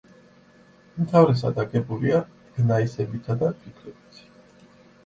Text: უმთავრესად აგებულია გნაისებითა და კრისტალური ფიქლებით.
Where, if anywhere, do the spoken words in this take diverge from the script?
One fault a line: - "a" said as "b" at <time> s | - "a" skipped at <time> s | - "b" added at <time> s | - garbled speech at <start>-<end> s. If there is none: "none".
- "კრისტალური" skipped at 3.5 s